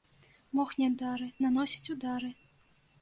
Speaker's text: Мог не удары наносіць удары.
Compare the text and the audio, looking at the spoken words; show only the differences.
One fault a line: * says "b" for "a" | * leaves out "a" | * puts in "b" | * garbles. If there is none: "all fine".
all fine